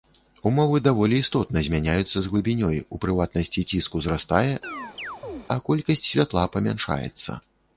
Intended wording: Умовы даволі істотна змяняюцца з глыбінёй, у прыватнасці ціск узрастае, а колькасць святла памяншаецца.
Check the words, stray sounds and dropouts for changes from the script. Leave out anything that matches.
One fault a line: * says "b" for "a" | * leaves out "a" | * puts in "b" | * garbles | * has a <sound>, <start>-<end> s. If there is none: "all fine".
* has a chirp, 4.6-5.5 s